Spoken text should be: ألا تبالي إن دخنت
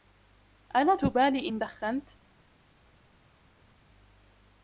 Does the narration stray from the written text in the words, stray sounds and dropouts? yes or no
no